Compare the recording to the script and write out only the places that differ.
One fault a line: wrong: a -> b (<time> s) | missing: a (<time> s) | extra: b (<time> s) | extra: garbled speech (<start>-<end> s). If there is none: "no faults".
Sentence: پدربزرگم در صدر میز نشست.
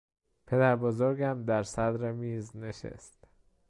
no faults